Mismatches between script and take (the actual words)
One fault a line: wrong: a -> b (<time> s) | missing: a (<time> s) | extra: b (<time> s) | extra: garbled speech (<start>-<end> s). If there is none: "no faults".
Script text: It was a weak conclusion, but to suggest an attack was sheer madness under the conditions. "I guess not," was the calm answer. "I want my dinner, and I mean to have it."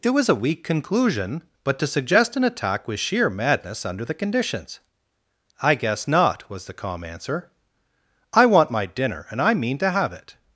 no faults